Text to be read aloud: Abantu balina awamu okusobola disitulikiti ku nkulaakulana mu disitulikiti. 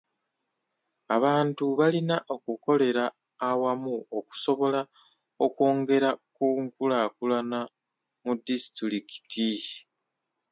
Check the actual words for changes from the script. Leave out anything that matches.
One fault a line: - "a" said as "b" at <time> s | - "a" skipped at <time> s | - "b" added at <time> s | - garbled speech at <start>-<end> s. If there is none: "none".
- "okukolera" added at 2.3 s
- "disitulikiti" said as "okwongera" at 5.5 s